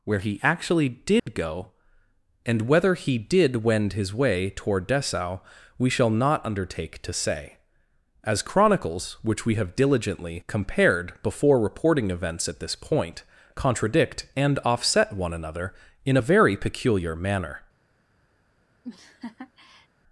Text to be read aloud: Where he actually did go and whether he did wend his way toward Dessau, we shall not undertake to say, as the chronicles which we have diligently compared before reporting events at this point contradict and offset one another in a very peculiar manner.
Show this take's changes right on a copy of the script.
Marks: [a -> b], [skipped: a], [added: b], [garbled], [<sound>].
Where he actually did [dropout] go and whether he did wend his way toward Dessau, we shall not undertake to say, as [skipped: the] chronicles which we have diligently compared before reporting events at this point contradict and offset one another in a very peculiar manner. [laugh]